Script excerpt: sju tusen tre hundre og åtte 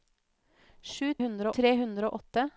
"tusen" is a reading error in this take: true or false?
true